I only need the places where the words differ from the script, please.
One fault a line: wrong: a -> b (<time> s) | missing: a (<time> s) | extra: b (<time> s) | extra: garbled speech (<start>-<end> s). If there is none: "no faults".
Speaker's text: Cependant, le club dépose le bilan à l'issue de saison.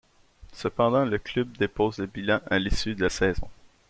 no faults